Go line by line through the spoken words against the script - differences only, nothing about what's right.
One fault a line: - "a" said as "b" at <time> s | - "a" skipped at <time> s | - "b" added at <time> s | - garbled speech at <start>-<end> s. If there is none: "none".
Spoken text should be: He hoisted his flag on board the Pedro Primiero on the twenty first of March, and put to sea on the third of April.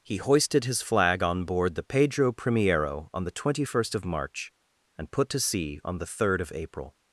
none